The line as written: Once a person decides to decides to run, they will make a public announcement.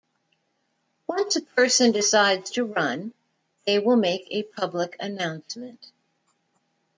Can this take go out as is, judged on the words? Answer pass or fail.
fail